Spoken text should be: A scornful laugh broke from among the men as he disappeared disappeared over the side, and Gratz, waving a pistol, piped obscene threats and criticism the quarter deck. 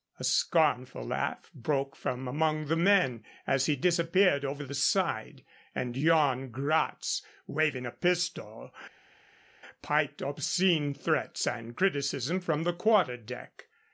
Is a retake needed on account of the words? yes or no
yes